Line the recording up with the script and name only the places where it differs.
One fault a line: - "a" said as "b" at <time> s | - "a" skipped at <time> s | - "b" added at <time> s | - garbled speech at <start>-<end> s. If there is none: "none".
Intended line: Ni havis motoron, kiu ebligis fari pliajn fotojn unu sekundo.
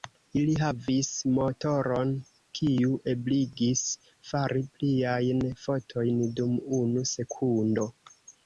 - "Ni" said as "Ili" at 0.4 s
- "dum" added at 6.4 s